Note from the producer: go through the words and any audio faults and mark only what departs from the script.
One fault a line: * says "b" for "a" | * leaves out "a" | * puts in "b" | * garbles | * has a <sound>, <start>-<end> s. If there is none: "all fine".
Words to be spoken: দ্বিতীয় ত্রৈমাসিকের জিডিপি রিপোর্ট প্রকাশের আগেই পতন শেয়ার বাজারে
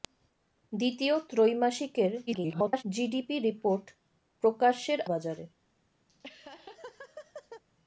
* garbles
* leaves out "আগেই পতন শেয়ার"
* has a laugh, 6.1-7.6 s